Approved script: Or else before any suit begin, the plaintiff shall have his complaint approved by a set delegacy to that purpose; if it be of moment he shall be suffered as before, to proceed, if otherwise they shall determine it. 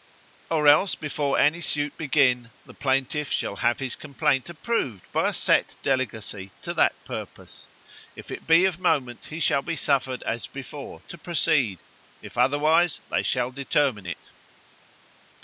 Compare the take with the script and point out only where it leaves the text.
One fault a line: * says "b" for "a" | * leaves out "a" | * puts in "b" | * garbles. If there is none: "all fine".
all fine